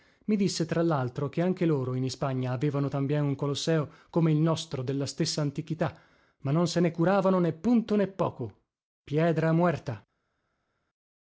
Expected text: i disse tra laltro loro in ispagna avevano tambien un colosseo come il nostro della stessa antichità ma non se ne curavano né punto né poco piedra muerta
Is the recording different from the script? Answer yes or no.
yes